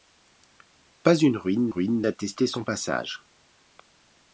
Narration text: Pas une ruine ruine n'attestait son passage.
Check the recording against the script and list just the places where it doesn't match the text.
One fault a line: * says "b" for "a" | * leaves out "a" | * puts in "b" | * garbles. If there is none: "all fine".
all fine